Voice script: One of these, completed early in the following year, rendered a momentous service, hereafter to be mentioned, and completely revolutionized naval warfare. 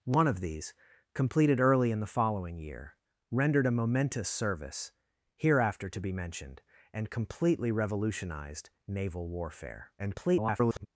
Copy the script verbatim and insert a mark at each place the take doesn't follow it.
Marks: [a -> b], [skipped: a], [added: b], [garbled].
One of these, completed early in the following year, rendered a momentous service, hereafter to be mentioned, and completely revolutionized naval warfare. [garbled]